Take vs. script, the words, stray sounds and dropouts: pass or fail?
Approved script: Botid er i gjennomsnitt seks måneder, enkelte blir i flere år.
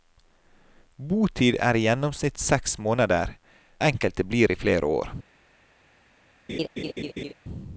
fail